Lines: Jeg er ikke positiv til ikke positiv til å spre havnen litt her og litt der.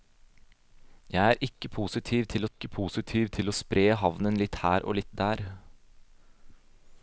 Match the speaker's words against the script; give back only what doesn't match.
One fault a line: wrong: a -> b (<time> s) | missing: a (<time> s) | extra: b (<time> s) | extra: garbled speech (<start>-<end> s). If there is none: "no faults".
no faults